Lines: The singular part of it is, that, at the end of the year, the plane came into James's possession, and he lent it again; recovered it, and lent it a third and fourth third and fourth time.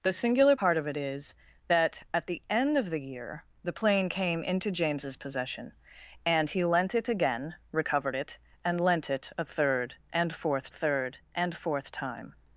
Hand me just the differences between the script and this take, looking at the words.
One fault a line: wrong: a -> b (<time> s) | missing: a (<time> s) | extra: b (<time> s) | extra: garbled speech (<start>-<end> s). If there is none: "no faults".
no faults